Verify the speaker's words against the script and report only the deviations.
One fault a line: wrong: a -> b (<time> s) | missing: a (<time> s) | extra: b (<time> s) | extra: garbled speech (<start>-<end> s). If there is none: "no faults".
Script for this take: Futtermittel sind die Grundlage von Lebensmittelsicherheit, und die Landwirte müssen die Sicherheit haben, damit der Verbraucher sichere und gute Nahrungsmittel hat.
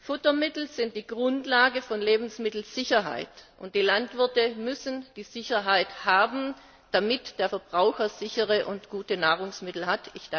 no faults